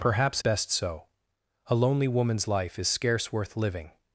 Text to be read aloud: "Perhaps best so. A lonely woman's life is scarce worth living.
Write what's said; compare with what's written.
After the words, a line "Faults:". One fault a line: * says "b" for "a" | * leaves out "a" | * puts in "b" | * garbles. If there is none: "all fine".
"Perhaps best so. A lonely woman's life is scarce worth living.
Faults:
all fine